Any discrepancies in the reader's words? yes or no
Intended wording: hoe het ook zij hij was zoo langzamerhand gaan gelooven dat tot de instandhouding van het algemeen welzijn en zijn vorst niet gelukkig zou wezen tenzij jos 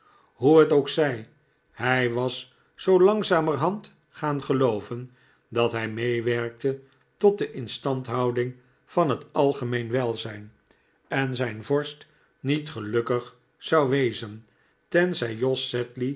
yes